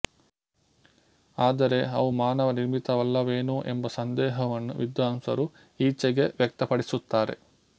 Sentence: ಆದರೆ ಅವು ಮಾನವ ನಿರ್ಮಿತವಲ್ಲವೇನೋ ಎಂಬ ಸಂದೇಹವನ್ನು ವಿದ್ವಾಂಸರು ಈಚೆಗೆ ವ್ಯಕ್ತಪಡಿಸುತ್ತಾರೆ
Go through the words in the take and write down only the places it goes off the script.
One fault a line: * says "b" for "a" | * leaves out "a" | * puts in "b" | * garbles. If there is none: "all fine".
all fine